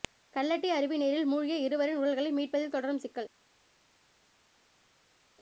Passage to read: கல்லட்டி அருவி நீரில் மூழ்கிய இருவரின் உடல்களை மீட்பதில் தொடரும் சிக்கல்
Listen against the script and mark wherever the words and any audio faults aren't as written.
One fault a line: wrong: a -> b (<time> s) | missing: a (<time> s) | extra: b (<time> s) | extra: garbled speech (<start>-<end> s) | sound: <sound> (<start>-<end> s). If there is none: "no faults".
no faults